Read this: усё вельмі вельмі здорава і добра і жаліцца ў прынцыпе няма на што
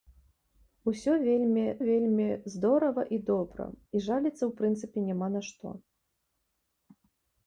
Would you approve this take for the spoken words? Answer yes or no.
yes